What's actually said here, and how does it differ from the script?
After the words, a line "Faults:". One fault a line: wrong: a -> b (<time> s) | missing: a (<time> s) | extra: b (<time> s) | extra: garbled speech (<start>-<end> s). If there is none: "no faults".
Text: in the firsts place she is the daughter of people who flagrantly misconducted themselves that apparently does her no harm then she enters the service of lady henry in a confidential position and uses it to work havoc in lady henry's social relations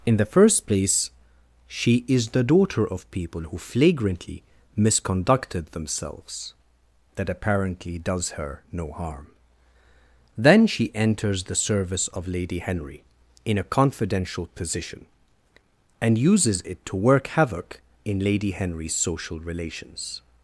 in the first place she is the daughter of people who flagrantly misconducted themselves that apparently does her no harm then she enters the service of lady henry in a confidential position and uses it to work havoc in lady henry's social relations
Faults:
wrong: firsts -> first (0.2 s)